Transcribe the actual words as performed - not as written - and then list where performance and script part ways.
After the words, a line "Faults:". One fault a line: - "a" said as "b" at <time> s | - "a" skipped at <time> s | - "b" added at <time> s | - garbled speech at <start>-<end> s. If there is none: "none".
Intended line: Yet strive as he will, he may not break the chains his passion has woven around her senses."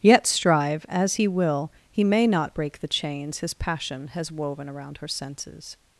Yet strive as he will, he may not break the chains his passion has woven around her senses."
Faults:
none